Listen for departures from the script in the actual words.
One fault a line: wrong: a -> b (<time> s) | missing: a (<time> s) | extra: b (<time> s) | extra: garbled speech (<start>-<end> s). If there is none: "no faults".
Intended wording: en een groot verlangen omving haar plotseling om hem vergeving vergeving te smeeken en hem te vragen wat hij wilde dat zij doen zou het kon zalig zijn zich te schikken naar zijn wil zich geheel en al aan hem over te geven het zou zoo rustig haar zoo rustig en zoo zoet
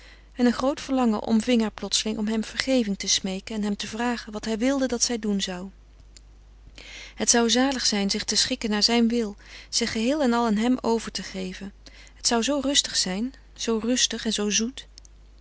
missing: vergeving (3.0 s)
wrong: kon -> zou (7.3 s)
wrong: haar -> zijn (12.9 s)